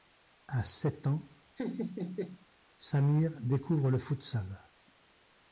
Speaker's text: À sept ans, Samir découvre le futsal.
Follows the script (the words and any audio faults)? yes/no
no